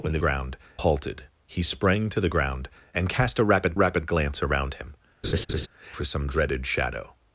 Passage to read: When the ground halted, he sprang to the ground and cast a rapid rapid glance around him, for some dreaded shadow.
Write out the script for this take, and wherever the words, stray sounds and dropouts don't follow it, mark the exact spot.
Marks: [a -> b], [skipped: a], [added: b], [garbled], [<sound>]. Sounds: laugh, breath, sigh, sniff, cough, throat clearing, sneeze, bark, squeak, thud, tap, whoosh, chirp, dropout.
When the ground halted, he sprang to the ground and cast a rapid rapid glance around him, [laugh] for some dreaded shadow.